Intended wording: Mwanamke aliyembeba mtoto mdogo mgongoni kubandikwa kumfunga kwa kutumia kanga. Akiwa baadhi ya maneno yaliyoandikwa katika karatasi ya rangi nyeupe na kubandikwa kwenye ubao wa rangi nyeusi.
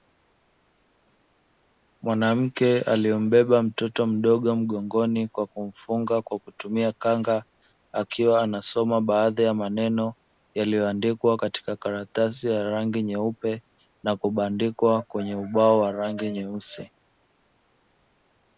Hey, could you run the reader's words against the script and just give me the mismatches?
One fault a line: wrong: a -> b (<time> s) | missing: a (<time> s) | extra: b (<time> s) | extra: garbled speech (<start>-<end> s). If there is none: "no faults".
wrong: kubandikwa -> kwa (5.3 s)
extra: anasoma (8.4 s)